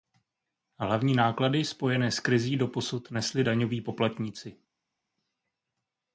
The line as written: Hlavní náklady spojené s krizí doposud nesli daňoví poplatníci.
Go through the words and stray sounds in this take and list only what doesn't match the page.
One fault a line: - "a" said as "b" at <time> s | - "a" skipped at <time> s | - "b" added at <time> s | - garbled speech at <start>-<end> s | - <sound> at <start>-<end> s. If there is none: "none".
none